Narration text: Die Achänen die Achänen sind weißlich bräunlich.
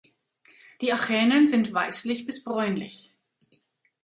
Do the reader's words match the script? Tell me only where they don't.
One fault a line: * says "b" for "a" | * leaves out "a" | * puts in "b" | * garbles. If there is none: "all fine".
* leaves out "die Achänen"
* puts in "bis"